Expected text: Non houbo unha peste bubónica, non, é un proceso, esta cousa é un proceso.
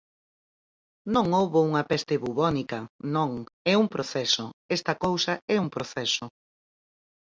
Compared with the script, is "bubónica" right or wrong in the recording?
right